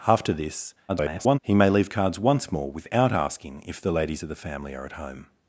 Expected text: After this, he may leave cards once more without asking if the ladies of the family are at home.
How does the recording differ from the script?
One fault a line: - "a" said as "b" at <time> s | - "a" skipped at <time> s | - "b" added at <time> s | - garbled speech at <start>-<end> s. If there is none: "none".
- garbled speech at 0.9-1.4 s